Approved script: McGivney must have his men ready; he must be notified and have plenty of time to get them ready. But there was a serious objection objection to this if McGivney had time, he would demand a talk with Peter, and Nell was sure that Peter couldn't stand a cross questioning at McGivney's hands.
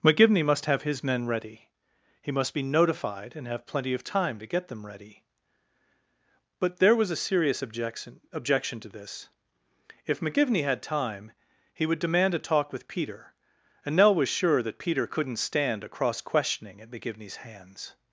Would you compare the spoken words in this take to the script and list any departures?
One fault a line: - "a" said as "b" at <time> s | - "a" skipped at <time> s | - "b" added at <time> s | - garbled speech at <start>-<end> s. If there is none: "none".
none